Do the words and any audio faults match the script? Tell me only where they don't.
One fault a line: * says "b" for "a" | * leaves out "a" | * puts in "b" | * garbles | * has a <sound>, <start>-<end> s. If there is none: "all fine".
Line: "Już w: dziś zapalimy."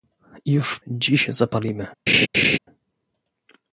* has a laugh, 2.1-2.6 s